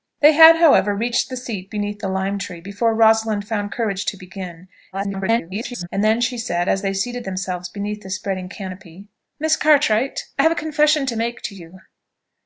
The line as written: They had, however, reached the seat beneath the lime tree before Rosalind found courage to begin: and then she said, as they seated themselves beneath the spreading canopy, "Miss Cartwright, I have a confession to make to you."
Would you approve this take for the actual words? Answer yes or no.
no